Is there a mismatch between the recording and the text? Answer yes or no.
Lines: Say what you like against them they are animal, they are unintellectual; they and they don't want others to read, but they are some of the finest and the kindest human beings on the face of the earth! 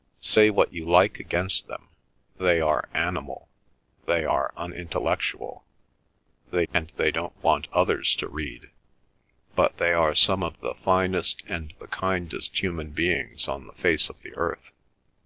no